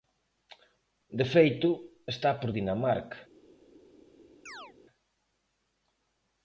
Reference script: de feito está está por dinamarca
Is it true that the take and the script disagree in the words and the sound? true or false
true